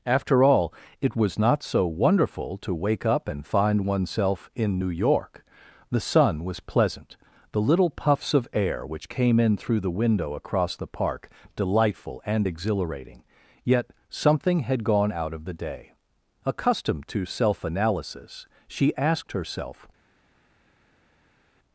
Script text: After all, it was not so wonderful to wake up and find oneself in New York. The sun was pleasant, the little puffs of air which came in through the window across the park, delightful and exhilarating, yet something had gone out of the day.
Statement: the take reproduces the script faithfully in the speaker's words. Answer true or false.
false